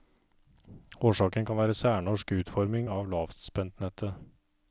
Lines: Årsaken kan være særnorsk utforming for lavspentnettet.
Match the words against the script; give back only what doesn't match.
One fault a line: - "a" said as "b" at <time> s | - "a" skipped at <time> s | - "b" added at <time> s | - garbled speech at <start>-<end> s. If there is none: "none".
- "for" said as "av" at 2.9 s